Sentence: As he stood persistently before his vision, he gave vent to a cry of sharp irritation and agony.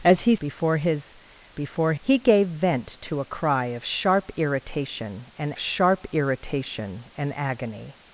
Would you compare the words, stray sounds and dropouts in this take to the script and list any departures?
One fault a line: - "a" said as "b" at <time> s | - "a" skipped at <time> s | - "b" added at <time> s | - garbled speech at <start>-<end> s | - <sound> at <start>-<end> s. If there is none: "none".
- "stood persistently" skipped at 0.3 s
- "vision" said as "before" at 1.5 s
- "sharp irritation and" added at 5.6 s